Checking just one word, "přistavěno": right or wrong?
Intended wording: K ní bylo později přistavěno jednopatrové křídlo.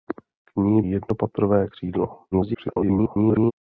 wrong